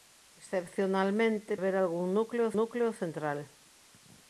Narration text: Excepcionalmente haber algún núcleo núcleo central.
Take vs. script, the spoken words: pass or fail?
pass